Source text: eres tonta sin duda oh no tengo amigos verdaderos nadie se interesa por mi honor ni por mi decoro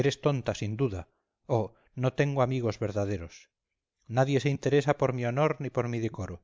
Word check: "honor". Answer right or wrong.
right